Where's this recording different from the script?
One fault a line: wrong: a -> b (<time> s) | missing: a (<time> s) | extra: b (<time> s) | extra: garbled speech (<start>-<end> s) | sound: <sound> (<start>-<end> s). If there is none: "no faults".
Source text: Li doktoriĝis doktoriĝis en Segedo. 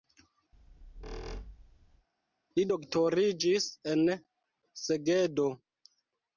sound: squeak (0.5-2.1 s)
missing: doktoriĝis (3.7 s)